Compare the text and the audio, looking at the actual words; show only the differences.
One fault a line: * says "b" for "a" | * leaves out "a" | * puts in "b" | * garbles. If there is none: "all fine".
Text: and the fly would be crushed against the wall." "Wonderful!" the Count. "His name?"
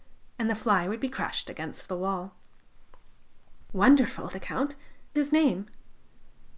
all fine